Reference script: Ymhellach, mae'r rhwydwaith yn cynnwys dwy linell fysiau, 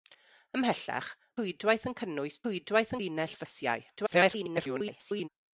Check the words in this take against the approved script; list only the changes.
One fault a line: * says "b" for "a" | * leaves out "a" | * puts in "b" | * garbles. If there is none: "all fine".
* leaves out "mae'r"
* says "rhwydwaith" for "dwy"
* garbles